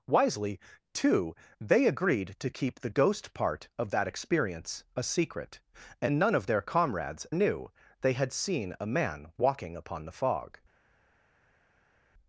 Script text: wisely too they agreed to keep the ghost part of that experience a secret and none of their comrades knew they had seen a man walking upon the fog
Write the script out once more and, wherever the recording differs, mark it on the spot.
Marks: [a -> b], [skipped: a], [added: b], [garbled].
wisely too they agreed to keep the ghost part of that experience a secret and none of their comrades knew they had seen a man walking upon the fog